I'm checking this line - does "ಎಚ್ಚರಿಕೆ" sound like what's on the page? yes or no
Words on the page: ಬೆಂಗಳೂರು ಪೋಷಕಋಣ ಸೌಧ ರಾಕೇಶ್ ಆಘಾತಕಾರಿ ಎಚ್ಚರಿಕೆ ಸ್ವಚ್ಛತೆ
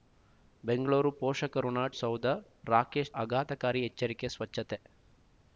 yes